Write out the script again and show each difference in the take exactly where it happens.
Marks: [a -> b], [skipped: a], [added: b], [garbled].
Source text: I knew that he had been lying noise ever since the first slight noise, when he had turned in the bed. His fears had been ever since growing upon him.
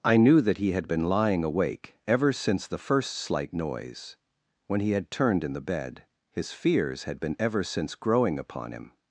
I knew that he had been lying [noise -> awake] ever since the first slight noise, when he had turned in the bed. His fears had been ever since growing upon him.